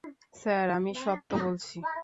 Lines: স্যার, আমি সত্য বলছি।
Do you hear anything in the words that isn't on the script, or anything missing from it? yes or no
no